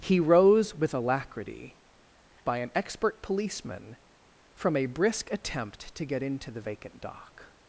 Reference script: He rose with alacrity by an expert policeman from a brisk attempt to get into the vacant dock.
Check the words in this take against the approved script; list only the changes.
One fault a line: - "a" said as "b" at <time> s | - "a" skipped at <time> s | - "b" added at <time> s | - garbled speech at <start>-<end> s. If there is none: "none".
none